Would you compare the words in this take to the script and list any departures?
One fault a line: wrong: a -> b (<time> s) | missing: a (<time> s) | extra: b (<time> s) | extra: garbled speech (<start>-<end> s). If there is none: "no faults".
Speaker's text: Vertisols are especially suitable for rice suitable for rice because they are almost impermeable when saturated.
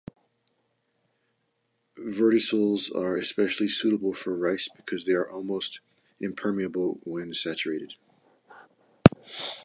missing: suitable for rice (4.7 s)